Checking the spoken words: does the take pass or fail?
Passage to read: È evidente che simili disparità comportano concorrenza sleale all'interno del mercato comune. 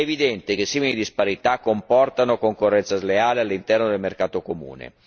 pass